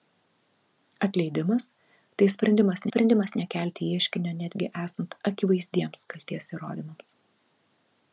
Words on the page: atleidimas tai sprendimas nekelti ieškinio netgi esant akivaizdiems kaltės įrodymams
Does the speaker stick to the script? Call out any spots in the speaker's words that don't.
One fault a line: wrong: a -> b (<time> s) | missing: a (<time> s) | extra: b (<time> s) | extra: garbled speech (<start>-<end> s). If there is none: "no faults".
extra: sprendimas (2.9 s)